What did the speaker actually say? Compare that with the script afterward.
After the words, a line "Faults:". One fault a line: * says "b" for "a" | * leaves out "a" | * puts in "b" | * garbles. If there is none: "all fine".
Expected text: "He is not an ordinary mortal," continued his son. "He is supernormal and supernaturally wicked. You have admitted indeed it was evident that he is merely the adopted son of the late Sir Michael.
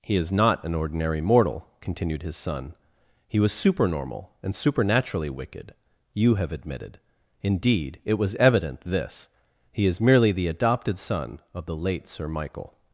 "He is not an ordinary mortal," continued his son. "He was supernormal and supernaturally wicked. You have admitted indeed it was evident this he is merely the adopted son of the late Sir Michael.
Faults:
* says "was" for "is"
* says "this" for "that"